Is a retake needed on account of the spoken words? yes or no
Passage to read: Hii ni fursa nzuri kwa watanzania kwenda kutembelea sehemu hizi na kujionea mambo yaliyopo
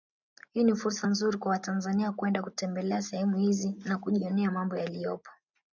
no